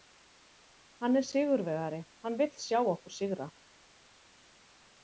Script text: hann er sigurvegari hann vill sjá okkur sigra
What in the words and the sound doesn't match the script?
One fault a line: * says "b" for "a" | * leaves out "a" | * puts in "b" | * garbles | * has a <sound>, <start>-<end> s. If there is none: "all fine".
all fine